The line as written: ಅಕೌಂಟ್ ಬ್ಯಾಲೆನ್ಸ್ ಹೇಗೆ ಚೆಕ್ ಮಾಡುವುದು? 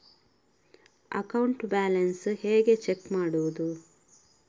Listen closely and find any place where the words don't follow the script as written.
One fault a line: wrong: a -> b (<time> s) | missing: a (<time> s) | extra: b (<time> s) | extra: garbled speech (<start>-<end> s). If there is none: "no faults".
no faults